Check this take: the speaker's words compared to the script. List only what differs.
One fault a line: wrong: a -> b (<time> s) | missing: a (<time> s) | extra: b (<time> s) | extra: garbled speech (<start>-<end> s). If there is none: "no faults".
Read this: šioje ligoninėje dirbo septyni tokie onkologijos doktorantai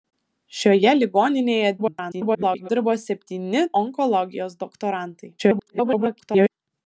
extra: garbled speech (1.8-2.7 s)
missing: tokie (3.6 s)
extra: garbled speech (5.4-6.5 s)